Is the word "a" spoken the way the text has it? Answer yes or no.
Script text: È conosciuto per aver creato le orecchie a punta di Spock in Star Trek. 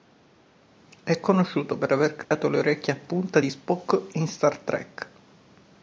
yes